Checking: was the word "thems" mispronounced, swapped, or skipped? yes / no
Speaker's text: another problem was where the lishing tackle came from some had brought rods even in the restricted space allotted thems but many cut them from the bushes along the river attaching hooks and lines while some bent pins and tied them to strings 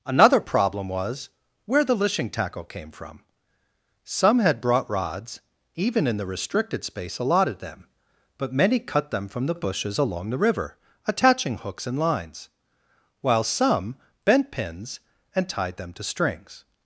yes